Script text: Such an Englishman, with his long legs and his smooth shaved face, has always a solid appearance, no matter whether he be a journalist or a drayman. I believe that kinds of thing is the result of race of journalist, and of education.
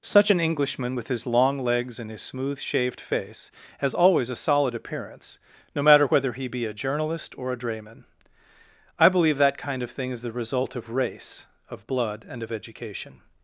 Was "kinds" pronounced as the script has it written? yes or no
no